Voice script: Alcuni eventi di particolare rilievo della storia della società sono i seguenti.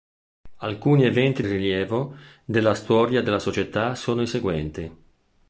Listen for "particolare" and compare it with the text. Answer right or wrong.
wrong